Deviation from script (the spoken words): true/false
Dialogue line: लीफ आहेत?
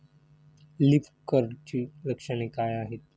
true